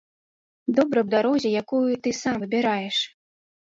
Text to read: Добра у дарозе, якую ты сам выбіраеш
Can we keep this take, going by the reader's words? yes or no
yes